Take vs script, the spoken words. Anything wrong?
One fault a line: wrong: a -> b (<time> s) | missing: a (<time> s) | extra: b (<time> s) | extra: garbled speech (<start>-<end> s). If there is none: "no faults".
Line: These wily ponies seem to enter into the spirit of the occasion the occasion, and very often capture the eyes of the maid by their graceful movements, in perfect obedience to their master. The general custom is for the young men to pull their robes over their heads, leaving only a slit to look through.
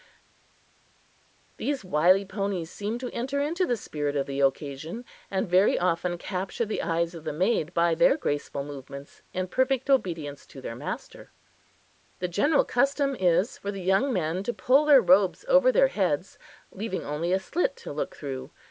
missing: the occasion (5.0 s)